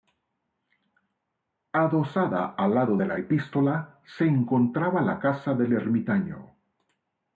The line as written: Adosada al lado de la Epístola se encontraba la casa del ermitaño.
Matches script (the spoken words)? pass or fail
pass